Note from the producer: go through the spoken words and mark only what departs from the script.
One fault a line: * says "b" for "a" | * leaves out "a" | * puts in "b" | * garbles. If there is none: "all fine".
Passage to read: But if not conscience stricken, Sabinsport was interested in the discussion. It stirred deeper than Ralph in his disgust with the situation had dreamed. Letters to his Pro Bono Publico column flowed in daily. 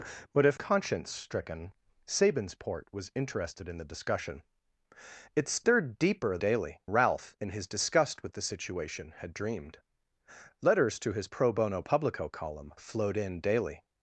* leaves out "not"
* says "daily" for "than"